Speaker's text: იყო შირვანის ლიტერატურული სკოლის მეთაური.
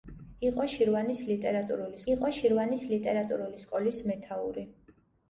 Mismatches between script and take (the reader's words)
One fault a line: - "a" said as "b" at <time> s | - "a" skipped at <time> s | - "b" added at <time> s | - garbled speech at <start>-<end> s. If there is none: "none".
- "იყო შირვანის ლიტერატურული" added at 2.1 s